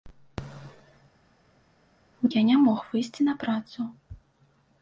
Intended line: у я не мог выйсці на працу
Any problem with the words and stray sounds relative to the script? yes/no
no